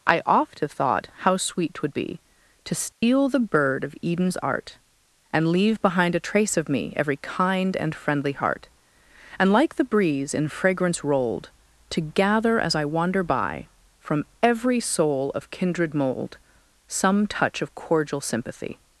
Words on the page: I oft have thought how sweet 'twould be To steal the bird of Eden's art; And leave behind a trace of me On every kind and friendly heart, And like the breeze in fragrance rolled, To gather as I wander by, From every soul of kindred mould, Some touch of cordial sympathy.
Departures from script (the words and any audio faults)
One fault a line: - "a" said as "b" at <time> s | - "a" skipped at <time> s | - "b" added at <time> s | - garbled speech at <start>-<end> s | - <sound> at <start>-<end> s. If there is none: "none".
- dropout at 2.9-3.0 s
- "On" skipped at 6.9 s